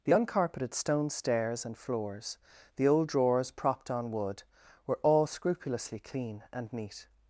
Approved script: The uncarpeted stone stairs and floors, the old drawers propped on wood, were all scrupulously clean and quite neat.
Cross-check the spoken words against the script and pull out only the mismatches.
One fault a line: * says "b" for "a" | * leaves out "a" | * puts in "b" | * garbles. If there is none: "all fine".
* leaves out "quite"